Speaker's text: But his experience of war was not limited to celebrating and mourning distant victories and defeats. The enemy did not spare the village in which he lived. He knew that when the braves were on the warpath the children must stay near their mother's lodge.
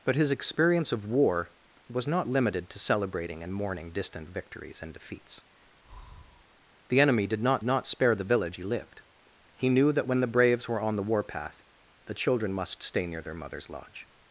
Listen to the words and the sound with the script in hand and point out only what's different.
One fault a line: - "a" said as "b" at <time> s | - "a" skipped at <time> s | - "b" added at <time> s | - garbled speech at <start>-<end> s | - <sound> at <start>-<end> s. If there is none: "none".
- breath at 5.8-6.4 s
- "not" added at 7.6 s
- "in which" skipped at 8.6 s